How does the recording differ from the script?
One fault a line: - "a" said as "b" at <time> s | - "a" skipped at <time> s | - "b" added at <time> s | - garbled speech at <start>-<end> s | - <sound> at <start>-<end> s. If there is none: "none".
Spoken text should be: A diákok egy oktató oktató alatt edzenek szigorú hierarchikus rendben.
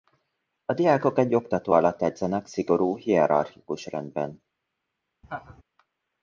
- "oktató" skipped at 1.7 s
- laugh at 5.2-5.6 s